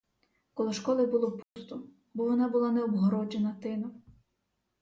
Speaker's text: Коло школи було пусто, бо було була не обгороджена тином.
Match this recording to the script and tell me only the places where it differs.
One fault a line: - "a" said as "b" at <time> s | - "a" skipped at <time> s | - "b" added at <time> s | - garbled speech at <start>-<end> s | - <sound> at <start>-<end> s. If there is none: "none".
- dropout at 1.4-1.6 s
- "було" said as "вона" at 2.2 s